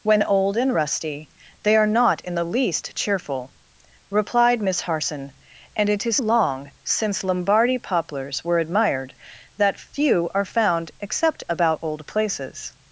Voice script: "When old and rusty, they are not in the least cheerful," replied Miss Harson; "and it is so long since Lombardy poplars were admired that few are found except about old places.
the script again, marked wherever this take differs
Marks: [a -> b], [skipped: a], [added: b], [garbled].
"When old and rusty, they are not in the least cheerful," replied Miss Harson; "and it is [skipped: so] long since Lombardy poplars were admired that few are found except about old places.